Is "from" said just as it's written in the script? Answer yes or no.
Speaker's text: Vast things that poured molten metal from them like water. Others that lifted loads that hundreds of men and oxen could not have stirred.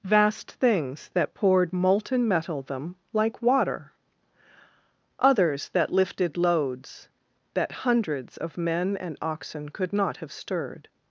no